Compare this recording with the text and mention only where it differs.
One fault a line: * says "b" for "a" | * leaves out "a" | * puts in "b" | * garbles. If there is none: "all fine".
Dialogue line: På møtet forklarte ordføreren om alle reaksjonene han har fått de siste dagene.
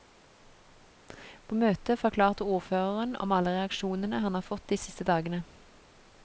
all fine